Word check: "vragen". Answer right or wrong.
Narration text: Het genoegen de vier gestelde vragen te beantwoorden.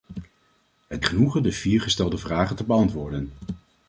right